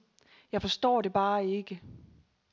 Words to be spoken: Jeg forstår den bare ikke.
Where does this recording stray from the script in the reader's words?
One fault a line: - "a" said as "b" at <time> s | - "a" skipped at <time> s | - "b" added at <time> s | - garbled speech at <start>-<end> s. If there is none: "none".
- "den" said as "det" at 1.0 s